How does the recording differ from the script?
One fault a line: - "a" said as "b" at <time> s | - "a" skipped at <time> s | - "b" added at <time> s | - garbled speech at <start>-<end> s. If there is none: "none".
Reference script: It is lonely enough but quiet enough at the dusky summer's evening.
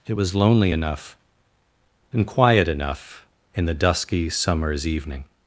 - "is" said as "was" at 0.1 s
- "but" said as "and" at 2.1 s
- "at" said as "in" at 3.5 s